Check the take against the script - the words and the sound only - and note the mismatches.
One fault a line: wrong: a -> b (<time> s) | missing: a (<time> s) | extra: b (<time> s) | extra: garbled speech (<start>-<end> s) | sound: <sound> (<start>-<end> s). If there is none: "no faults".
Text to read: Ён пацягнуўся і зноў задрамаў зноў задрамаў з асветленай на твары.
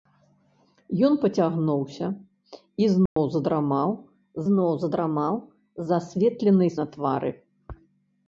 sound: dropout (3.1-3.2 s)